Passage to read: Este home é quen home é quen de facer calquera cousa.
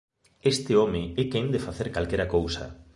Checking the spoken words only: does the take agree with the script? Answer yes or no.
no